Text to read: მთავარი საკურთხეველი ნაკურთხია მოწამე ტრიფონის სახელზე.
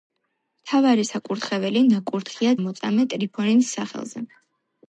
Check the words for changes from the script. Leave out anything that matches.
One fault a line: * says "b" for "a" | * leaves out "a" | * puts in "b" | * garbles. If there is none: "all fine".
all fine